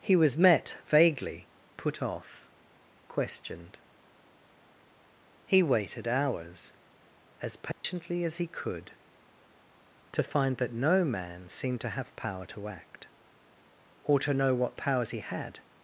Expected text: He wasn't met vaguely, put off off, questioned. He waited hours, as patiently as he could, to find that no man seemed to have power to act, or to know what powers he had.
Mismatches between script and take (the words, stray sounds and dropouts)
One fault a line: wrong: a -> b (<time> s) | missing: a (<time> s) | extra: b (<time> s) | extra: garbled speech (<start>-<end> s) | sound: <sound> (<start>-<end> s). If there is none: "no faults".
wrong: wasn't -> was (0.1 s)
missing: off (2.5 s)
sound: dropout (7.7-7.8 s)